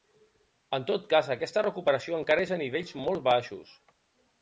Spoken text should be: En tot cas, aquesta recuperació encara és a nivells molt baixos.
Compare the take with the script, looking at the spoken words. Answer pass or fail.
pass